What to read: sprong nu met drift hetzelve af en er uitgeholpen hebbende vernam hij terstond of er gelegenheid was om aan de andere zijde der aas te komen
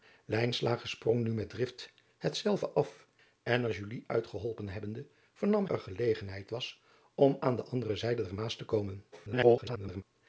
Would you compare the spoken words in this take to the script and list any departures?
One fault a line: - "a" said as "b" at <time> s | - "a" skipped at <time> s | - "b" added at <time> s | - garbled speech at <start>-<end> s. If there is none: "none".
- "hij terstond of" skipped at 5.7 s
- garbled speech at 9.1-10.0 s